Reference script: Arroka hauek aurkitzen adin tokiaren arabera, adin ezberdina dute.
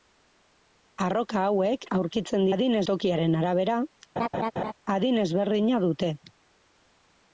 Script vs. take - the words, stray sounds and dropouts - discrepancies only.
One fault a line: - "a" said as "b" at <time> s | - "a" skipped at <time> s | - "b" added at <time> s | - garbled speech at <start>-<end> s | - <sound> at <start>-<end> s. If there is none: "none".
- laugh at 4.2-4.7 s